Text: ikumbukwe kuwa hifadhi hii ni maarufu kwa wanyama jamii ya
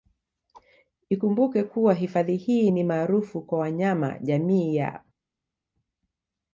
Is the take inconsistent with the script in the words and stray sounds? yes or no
no